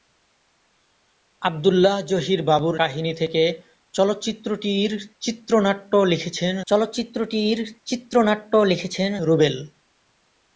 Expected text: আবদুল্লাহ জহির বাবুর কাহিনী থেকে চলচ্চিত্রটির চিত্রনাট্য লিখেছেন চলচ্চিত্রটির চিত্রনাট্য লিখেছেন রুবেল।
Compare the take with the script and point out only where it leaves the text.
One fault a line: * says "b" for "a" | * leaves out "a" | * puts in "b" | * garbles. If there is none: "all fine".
all fine